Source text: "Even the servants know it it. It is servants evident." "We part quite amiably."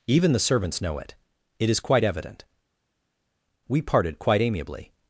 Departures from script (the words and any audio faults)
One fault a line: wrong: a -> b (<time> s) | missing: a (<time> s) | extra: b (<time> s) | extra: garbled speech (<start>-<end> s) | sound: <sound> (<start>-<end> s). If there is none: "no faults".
missing: It (1.7 s)
wrong: servants -> quite (1.8 s)
wrong: part -> parted (3.8 s)